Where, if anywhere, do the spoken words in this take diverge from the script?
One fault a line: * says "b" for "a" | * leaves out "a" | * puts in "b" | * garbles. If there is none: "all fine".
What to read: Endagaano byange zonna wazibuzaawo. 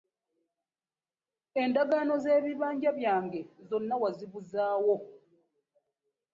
* puts in "z'ebibanja"